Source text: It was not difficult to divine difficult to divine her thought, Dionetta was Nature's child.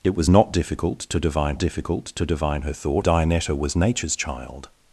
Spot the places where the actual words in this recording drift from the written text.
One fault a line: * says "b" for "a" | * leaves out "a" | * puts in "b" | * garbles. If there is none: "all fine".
all fine